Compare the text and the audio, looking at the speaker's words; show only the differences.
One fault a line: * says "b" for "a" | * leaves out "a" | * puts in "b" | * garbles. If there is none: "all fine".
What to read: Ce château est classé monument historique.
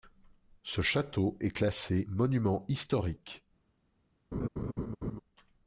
all fine